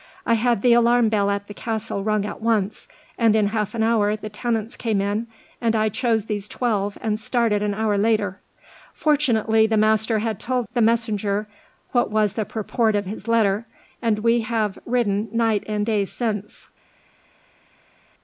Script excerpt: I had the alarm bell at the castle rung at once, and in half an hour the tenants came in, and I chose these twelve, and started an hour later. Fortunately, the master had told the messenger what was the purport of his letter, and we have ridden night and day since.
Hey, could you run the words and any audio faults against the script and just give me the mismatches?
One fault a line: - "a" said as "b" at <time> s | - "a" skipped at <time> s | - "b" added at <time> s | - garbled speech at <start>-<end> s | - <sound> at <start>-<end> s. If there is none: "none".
none